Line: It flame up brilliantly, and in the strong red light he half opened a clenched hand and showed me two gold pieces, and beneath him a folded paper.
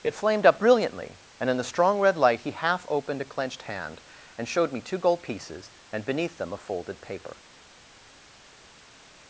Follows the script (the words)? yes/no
no